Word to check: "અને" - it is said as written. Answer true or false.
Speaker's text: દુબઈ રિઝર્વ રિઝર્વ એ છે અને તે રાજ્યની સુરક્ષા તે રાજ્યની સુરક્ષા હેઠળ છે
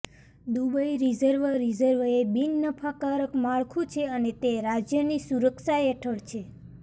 false